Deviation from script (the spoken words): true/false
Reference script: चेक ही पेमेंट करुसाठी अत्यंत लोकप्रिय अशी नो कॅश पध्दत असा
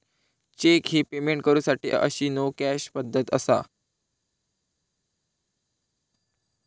true